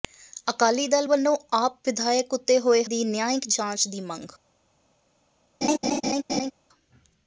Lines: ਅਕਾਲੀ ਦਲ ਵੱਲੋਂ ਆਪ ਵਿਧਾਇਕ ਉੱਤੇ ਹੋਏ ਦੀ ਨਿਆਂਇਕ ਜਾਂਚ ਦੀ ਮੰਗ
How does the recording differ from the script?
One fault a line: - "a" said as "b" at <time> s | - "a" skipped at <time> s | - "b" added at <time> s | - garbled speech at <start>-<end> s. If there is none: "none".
none